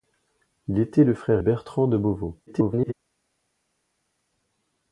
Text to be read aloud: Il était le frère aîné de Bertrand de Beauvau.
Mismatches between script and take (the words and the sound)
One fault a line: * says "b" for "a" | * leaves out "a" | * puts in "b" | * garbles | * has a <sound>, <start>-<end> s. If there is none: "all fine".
* leaves out "aîné de"
* garbles